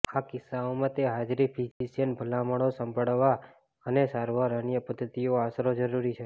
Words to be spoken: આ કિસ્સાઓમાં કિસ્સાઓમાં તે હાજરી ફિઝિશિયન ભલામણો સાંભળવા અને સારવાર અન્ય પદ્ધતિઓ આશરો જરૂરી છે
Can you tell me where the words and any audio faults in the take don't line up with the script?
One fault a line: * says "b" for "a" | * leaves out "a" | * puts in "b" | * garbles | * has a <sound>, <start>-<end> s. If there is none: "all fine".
* leaves out "કિસ્સાઓમાં"
* has a dropout, 1.7-1.8 s